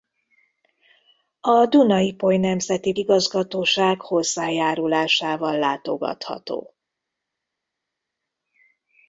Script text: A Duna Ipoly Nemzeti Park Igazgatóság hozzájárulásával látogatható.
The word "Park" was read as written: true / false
false